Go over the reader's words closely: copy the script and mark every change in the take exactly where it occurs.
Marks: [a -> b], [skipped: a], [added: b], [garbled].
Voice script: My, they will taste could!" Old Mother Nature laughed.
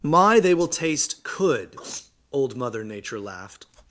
My, they will taste could!" Old Mother Nature laughed.